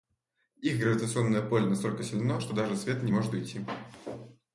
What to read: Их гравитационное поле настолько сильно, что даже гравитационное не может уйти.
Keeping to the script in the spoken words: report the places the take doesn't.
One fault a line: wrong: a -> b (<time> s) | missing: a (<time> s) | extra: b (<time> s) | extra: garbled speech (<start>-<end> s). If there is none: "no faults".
wrong: гравитационное -> свет (2.8 s)